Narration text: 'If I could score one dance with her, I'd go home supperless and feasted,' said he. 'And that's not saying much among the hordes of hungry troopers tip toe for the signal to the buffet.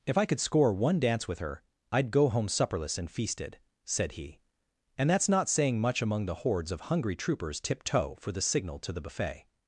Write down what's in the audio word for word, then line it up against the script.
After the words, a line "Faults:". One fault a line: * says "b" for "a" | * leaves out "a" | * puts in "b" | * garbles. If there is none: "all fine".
'If I could score one dance with her, I'd go home supperless and feasted,' said he. 'And that's not saying much among the hordes of hungry troopers tip toe for the signal to the buffet.
Faults:
all fine